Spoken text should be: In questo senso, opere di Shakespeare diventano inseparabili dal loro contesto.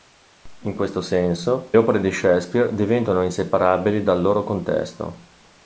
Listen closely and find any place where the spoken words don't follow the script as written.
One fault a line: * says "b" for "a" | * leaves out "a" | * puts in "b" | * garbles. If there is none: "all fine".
all fine